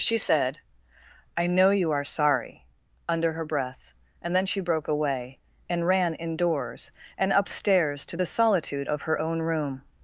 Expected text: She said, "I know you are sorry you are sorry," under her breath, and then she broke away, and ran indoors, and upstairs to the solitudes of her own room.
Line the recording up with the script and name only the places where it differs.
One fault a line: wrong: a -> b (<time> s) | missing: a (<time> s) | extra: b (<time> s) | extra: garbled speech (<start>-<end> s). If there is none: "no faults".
missing: you are sorry (2.6 s)
wrong: solitudes -> solitude (8.3 s)